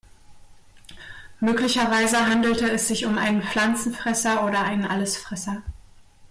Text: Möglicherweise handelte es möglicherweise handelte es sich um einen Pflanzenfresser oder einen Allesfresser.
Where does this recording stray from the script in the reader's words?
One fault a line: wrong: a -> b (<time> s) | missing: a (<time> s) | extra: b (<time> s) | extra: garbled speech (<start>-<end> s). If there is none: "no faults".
missing: möglicherweise handelte es (2.9 s)